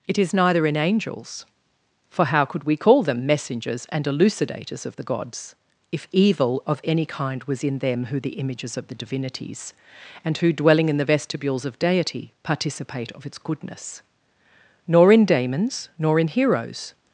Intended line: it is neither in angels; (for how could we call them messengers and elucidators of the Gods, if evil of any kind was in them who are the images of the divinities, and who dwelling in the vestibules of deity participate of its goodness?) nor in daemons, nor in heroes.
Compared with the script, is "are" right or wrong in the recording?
wrong